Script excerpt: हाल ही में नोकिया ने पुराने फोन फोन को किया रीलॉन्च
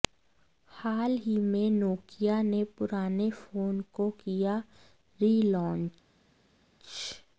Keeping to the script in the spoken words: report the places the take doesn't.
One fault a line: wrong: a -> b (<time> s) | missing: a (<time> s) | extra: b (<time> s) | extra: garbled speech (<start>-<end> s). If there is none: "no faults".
missing: फोन (3.8 s)